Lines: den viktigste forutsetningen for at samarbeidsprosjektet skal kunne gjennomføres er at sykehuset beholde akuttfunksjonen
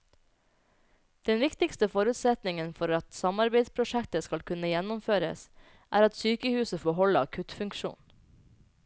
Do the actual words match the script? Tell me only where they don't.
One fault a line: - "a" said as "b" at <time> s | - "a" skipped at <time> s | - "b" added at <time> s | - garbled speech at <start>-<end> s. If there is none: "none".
none